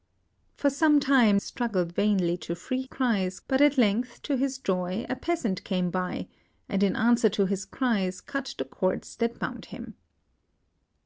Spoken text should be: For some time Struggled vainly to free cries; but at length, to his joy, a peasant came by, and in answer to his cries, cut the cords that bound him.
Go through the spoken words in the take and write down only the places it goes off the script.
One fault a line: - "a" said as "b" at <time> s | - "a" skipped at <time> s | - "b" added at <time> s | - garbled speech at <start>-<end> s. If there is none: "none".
none